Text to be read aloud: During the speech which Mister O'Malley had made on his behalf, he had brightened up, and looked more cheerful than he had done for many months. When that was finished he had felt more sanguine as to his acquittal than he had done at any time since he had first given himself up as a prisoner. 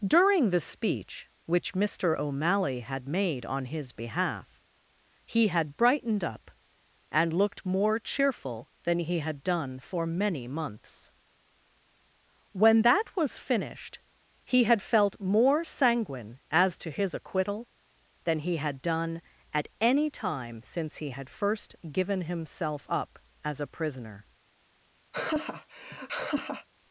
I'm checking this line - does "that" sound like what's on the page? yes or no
yes